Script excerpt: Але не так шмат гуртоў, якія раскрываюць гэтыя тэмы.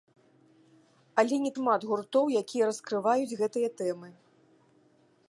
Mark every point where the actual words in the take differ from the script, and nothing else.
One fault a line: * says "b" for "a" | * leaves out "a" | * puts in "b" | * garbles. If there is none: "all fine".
* leaves out "так"